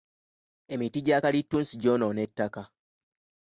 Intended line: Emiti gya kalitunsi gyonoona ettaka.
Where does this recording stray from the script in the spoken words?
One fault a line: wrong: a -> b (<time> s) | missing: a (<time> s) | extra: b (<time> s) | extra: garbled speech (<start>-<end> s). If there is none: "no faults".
no faults